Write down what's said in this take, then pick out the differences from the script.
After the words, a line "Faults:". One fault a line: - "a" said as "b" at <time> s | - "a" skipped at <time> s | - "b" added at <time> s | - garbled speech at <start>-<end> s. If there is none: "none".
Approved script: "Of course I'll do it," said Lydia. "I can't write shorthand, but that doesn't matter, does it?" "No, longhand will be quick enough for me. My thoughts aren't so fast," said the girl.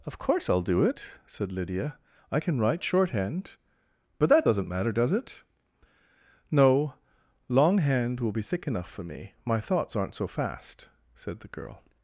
"Of course I'll do it," said Lydia. "I can write shorthand, but that doesn't matter, does it?" "No, longhand will be thick enough for me. My thoughts aren't so fast," said the girl.
Faults:
- "can't" said as "can" at 2.4 s
- "quick" said as "thick" at 8.4 s